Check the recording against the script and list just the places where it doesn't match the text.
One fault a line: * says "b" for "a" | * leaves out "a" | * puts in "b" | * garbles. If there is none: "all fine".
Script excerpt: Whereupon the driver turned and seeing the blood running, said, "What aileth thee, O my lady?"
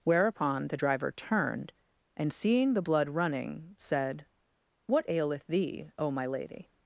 all fine